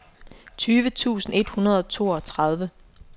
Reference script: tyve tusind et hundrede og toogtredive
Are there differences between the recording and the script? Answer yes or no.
no